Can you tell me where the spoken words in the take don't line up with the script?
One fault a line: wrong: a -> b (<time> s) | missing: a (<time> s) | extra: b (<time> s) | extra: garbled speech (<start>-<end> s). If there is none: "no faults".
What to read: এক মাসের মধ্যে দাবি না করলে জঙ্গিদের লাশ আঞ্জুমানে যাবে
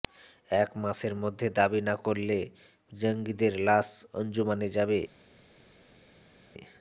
no faults